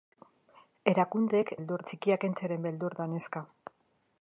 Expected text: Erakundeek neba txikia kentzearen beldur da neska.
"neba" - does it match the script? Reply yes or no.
no